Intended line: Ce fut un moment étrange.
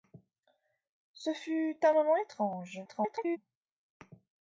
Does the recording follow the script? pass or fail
fail